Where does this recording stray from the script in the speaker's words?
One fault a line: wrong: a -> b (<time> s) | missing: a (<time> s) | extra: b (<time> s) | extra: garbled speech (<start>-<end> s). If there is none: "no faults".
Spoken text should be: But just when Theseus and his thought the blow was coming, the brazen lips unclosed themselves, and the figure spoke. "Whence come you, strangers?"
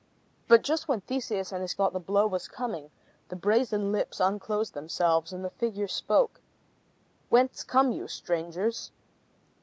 no faults